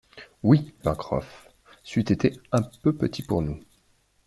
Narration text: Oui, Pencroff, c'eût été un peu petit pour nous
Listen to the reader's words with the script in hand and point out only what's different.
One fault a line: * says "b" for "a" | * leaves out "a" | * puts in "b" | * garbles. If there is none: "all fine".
all fine